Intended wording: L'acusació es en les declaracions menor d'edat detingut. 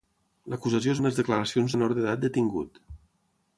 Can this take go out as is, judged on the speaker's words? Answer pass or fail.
pass